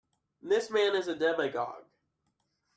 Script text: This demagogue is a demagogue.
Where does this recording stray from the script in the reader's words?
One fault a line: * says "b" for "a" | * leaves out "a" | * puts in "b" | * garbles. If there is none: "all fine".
* says "man" for "demagogue"